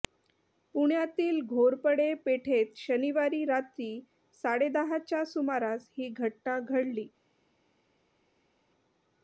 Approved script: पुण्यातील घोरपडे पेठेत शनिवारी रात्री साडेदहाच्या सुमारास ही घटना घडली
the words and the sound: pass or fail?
pass